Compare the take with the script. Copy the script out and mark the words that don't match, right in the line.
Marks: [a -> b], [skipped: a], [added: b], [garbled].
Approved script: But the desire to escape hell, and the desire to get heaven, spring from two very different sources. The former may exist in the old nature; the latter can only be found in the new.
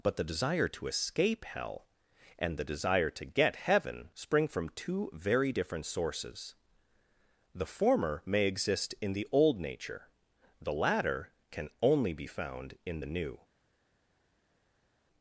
But the desire to escape hell, and the desire to get heaven, spring from two very different sources. The former may exist in the old nature; the latter can only be found in the new.